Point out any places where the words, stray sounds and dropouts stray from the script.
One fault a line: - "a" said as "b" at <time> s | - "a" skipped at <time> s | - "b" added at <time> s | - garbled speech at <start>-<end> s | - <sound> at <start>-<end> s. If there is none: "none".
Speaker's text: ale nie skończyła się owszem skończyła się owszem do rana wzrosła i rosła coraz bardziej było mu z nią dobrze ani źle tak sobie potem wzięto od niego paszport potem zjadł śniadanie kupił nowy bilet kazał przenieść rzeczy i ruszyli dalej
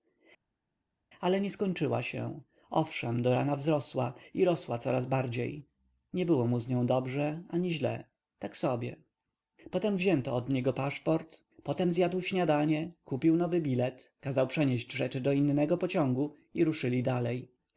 - "skończyła się owszem" skipped at 3.2 s
- "nie" added at 6.1 s
- "do innego pociągu" added at 15.2 s